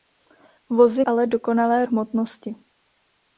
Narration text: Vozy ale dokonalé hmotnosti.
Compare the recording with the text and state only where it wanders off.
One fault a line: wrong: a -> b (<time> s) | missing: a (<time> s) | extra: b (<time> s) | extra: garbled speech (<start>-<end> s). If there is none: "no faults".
no faults